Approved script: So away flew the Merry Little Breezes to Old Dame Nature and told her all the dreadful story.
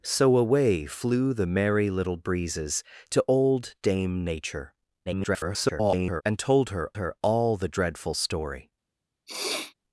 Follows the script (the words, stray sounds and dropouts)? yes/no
no